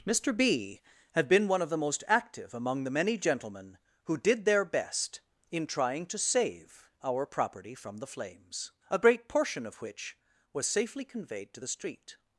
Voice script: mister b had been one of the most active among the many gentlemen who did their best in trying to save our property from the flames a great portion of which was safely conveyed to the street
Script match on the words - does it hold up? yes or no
yes